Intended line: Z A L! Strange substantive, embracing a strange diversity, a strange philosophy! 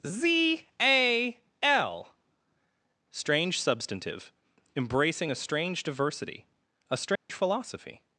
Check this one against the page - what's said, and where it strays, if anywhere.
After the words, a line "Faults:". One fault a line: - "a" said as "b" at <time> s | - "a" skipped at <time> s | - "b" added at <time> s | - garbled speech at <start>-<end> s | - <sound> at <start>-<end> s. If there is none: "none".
Z A L! Strange substantive, embracing a strange diversity, a strange philosophy!
Faults:
- dropout at 7.2-7.3 s